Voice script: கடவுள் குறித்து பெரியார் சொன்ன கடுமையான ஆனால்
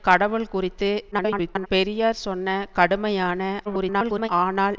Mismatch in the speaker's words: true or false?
true